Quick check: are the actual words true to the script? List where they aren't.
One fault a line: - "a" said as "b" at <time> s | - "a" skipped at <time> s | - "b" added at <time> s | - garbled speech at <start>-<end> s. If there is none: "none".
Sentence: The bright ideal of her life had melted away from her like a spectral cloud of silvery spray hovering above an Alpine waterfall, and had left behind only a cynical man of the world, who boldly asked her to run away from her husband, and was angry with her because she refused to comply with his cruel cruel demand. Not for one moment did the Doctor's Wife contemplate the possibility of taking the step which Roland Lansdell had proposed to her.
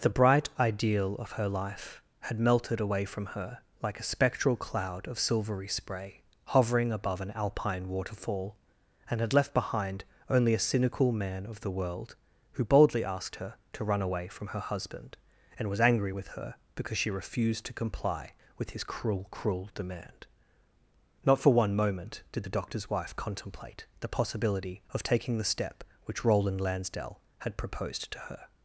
none